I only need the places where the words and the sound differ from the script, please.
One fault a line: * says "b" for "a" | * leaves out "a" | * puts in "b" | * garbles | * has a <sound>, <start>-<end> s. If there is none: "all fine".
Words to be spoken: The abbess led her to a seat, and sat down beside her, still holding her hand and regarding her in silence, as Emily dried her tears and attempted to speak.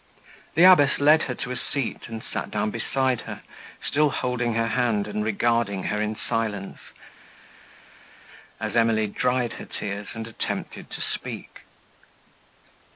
all fine